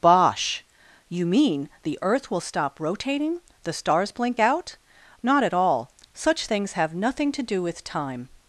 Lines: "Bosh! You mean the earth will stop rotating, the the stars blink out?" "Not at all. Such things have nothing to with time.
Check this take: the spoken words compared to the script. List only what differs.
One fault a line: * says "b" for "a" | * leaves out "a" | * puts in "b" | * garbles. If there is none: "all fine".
* leaves out "the"
* puts in "do"